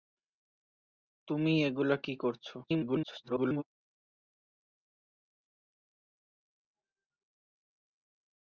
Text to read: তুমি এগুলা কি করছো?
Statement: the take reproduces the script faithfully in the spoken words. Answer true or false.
false